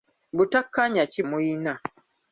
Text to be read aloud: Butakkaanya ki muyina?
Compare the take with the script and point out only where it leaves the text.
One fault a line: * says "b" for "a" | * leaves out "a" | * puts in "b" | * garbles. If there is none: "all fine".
all fine